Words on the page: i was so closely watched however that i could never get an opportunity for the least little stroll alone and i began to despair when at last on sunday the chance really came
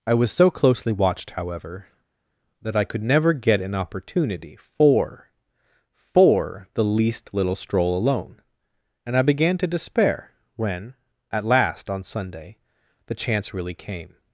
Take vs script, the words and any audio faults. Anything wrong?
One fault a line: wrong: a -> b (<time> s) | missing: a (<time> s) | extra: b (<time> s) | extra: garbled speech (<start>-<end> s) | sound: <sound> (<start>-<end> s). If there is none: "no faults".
extra: for (5.9 s)